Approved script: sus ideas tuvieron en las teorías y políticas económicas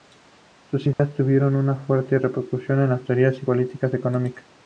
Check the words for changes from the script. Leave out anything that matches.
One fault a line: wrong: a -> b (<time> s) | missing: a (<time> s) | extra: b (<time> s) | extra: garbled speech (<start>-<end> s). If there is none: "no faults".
extra: una fuerte repercusión (1.6 s)